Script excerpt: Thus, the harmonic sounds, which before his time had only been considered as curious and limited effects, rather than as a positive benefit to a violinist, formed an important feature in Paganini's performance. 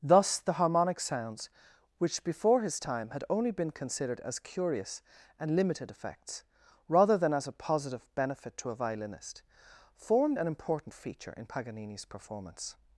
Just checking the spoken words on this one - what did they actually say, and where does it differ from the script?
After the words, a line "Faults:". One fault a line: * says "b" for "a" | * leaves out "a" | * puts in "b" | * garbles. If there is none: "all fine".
Thus, the harmonic sounds, which before his time had only been considered as curious and limited effects, rather than as a positive benefit to a violinist, formed an important feature in Paganini's performance.
Faults:
all fine